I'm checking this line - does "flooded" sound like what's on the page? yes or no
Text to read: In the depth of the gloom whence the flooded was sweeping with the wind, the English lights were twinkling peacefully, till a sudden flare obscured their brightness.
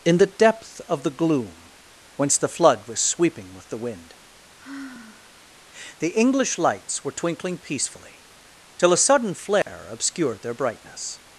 no